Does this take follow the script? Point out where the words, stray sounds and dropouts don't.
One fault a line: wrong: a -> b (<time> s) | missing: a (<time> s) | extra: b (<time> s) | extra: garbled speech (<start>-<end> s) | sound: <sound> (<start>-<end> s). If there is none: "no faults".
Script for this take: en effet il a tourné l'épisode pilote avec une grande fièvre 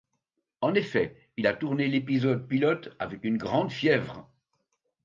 no faults